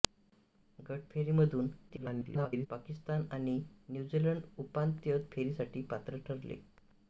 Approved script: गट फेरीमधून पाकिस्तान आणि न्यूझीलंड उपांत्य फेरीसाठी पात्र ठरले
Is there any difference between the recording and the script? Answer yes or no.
yes